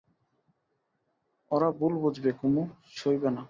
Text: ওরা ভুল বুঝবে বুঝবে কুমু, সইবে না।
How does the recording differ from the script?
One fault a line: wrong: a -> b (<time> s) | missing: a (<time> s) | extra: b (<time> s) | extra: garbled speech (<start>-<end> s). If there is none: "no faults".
missing: বুঝবে (2.3 s)